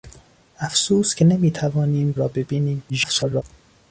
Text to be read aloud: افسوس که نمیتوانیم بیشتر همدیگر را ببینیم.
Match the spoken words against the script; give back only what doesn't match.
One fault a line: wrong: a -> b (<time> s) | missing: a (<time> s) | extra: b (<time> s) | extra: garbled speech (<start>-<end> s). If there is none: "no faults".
missing: بیشتر همدیگر (2.1 s)
extra: garbled speech (2.9-3.4 s)